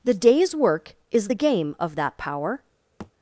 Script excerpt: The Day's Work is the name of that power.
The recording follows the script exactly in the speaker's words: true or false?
false